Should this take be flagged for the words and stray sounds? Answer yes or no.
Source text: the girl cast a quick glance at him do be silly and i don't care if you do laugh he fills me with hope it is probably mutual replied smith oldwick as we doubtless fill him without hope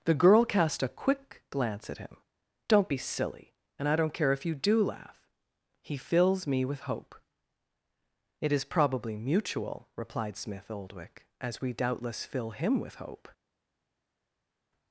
yes